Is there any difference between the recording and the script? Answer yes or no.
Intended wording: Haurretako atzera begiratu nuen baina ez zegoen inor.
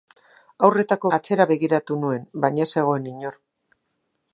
no